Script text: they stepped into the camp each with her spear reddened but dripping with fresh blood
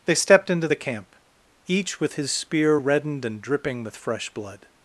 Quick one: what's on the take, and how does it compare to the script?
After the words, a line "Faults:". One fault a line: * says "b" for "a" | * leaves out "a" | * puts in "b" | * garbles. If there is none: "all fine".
they stepped into the camp each with his spear reddened and dripping with fresh blood
Faults:
* says "his" for "her"
* says "and" for "but"